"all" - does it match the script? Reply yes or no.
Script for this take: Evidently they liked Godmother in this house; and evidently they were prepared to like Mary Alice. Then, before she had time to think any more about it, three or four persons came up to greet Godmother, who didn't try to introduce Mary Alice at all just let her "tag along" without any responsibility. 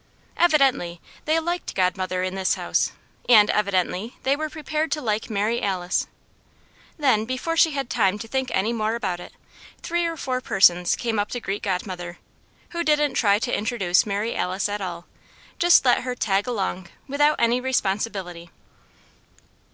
yes